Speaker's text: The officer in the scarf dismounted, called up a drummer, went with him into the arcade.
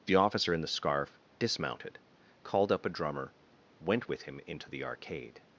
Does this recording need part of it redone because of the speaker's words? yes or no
no